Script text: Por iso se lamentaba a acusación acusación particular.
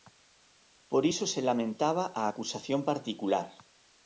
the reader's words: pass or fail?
fail